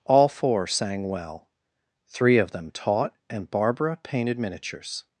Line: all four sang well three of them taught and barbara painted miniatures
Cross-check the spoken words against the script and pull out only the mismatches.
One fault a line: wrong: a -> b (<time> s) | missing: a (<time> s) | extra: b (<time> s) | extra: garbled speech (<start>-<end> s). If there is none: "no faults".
no faults